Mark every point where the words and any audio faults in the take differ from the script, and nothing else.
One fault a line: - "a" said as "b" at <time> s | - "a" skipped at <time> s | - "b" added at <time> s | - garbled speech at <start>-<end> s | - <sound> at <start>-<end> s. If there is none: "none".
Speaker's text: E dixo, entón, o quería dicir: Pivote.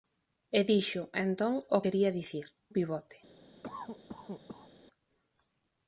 - cough at 3.6-4.7 s